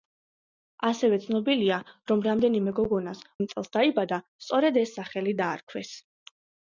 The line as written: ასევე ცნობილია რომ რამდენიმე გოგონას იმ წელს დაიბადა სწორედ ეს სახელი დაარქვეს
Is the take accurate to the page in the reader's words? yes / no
yes